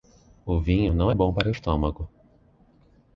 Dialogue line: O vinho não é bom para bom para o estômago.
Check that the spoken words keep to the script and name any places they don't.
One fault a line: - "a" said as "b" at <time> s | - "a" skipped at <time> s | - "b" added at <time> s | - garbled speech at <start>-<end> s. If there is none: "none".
- "bom para" skipped at 1.5 s